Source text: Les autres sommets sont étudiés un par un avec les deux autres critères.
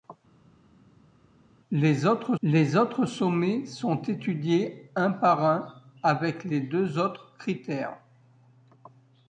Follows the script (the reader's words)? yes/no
no